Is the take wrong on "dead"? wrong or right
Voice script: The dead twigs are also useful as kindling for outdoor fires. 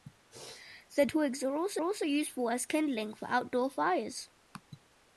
wrong